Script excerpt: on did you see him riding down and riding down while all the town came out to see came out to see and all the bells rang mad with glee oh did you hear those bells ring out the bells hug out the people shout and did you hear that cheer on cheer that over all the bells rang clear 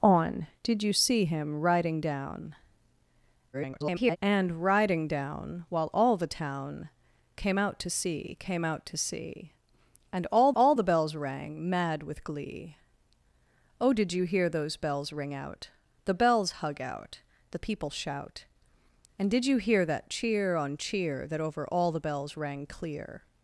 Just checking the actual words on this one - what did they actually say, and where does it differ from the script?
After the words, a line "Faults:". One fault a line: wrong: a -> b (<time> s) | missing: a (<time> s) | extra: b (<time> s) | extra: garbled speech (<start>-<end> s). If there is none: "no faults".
on did you see him riding down [garbled] and riding down while all the town came out to see came out to see and all all the bells rang mad with glee oh did you hear those bells ring out the bells hug out the people shout and did you hear that cheer on cheer that over all the bells rang clear
Faults:
extra: garbled speech (3.5-4.2 s)
extra: all (10.5 s)